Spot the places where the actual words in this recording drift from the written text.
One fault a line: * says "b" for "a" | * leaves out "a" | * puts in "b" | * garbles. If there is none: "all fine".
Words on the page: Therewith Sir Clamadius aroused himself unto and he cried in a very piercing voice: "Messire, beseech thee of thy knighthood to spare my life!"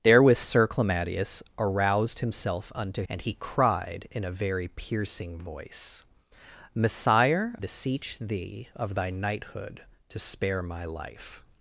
all fine